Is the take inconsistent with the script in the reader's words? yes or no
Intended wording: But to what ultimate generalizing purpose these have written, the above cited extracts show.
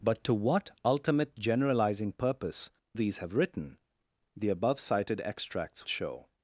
no